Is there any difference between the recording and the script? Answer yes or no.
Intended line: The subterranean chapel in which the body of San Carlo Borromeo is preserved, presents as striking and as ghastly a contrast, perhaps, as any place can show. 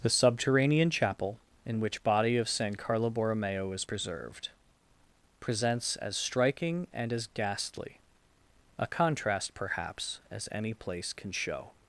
yes